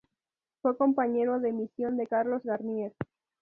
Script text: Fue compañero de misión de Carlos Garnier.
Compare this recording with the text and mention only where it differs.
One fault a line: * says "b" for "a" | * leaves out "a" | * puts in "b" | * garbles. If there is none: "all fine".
all fine